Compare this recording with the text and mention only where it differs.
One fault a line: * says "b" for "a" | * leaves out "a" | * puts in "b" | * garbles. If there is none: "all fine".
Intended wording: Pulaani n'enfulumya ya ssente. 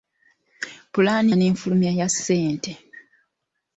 all fine